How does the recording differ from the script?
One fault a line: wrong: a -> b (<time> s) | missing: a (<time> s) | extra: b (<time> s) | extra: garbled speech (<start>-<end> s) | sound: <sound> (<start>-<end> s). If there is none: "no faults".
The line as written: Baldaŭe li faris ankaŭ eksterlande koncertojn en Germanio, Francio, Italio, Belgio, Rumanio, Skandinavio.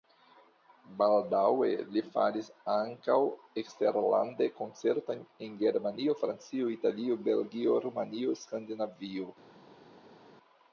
no faults